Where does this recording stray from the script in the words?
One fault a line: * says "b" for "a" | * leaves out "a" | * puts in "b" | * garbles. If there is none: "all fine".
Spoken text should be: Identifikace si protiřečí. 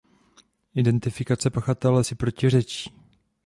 * puts in "pachatele"